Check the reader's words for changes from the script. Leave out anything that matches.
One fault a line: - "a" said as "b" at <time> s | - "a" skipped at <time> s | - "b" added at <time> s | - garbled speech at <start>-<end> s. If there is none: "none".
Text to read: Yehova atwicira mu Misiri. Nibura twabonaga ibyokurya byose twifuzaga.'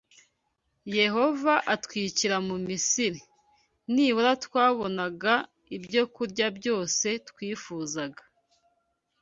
none